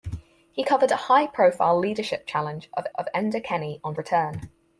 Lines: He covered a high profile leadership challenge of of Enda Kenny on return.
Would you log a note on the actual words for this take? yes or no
no